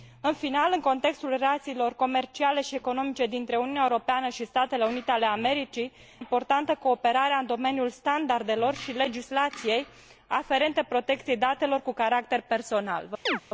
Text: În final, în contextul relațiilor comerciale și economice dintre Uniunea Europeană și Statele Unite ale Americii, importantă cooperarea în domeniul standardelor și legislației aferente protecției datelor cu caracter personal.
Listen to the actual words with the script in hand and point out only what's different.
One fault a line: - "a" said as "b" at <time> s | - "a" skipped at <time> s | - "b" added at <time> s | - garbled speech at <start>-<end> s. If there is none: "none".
none